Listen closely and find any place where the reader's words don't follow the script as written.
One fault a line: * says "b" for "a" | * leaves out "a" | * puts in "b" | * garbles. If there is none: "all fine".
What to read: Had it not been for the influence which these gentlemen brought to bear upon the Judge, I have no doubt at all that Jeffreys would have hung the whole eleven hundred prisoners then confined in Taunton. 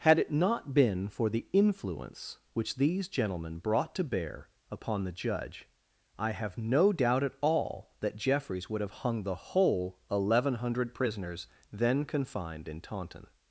all fine